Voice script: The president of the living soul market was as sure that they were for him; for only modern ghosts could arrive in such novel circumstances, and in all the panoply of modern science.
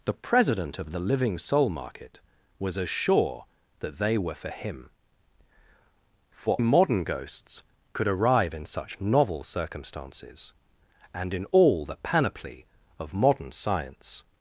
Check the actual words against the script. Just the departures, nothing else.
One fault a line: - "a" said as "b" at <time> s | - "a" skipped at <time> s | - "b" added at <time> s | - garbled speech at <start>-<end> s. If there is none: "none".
- "only" skipped at 6.6 s